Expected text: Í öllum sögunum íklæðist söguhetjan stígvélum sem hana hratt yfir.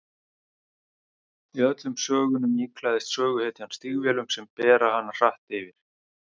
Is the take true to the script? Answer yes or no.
no